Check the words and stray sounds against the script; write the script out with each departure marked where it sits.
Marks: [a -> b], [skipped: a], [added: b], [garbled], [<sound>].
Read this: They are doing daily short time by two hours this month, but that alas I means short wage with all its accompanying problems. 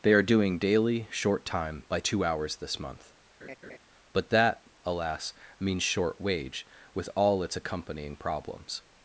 They are doing daily short time by two hours this month, [laugh] but that alas [skipped: I] means short wage with all its accompanying problems.